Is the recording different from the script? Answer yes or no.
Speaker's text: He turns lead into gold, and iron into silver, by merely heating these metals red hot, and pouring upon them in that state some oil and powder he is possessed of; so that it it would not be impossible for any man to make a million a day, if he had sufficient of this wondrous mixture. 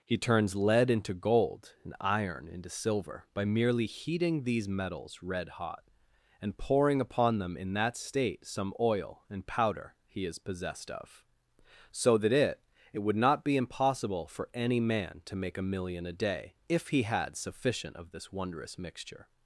no